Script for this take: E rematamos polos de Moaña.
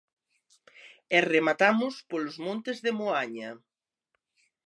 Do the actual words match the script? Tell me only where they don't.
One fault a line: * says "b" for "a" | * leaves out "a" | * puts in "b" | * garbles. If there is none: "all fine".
* puts in "montes"